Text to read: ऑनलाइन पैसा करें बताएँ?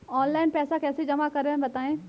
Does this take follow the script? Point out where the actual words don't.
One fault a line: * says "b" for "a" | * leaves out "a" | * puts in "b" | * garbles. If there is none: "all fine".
* puts in "कैसे जमा"